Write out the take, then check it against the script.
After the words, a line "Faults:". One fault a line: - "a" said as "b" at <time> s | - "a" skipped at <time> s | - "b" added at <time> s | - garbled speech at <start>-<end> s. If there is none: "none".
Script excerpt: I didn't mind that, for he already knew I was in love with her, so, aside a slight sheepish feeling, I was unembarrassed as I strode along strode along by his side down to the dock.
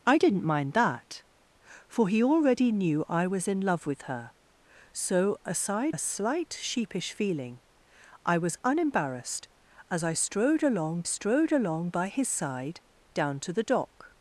I didn't mind that, for he already knew I was in love with her, so, aside a slight sheepish feeling, I was unembarrassed as I strode along strode along by his side down to the dock.
Faults:
none